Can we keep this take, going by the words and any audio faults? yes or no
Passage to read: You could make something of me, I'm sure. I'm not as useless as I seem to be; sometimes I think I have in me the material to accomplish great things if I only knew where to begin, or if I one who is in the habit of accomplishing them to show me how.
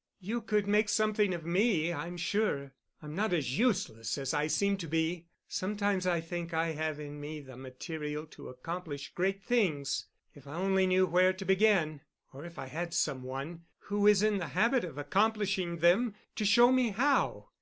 no